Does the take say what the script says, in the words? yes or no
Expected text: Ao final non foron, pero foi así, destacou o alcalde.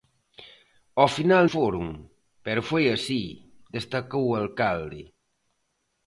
no